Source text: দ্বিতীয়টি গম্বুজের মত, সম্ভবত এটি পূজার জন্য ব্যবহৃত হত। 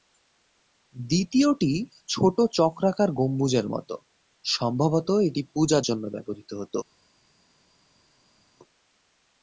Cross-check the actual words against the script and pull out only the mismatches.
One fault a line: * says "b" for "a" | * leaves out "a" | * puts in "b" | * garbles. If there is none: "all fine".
* puts in "ছোট চক্রাকার"